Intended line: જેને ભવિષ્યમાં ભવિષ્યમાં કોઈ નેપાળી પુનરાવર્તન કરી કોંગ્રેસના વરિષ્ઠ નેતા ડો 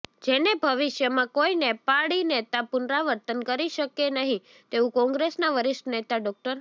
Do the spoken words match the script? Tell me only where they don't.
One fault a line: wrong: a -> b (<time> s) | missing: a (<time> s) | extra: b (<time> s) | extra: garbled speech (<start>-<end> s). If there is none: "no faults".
missing: ભવિષ્યમાં (1.3 s)
extra: નેતા (2.2 s)
extra: શકે નહીં તેવું (3.7 s)